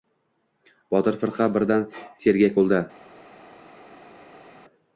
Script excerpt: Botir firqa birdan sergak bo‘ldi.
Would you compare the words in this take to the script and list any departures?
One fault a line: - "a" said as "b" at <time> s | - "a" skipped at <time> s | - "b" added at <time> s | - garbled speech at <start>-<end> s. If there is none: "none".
none